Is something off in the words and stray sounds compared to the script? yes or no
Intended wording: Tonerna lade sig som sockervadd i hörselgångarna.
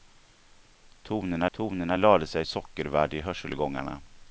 yes